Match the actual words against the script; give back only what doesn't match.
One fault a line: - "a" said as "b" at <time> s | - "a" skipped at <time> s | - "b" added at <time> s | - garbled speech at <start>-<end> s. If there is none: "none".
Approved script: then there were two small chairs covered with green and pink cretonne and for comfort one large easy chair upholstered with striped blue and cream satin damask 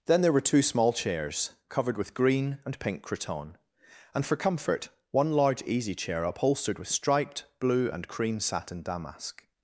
none